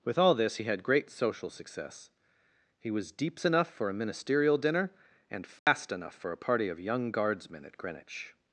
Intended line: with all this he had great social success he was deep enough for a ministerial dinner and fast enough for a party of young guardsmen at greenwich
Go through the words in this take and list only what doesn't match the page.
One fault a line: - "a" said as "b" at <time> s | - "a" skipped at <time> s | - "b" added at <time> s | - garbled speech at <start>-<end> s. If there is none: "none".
- "deep" said as "deeps" at 3.1 s